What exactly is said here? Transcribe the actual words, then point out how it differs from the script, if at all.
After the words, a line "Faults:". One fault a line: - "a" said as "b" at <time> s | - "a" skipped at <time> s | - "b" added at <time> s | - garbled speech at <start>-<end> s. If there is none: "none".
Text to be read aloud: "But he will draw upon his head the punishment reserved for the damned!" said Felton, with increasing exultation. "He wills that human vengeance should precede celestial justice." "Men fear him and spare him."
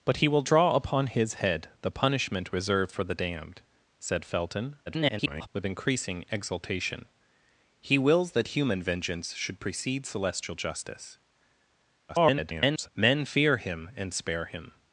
"But he will draw upon his head the punishment reserved for the damned!" said Felton, [garbled] with increasing exultation. "He wills that human vengeance should precede celestial justice." [garbled] "Men fear him and spare him."
Faults:
- garbled speech at 4.9-5.5 s
- garbled speech at 12.1-12.9 s